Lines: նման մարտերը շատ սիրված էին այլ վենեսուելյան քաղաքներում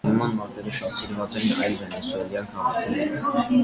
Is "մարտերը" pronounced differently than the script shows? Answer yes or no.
no